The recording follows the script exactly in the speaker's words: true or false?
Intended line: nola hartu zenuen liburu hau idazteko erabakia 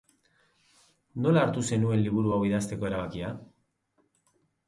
true